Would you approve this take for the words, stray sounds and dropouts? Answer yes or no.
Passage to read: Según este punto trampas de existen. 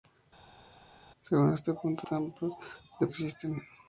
yes